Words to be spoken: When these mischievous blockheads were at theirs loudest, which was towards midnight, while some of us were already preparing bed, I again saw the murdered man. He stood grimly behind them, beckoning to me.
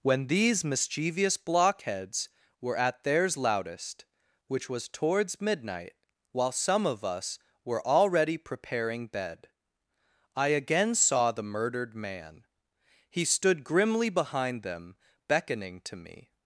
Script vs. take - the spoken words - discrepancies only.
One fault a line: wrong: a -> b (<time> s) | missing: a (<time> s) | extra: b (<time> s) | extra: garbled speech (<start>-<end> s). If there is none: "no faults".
no faults